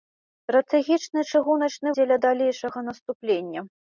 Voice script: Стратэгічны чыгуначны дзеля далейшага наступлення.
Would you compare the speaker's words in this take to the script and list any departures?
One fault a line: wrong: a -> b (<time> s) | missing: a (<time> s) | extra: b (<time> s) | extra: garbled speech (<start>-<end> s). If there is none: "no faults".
no faults